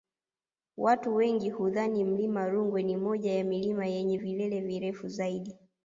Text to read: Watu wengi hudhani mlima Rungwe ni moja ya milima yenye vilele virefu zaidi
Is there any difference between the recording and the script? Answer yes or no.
no